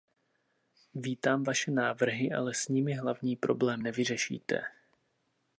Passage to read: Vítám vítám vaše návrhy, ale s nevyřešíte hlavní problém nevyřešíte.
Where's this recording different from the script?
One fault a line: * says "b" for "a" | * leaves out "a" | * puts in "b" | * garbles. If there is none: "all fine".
* leaves out "vítám"
* says "nimi" for "nevyřešíte"